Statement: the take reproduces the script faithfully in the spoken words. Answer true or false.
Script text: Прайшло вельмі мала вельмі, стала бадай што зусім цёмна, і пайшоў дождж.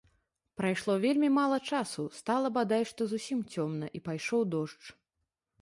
false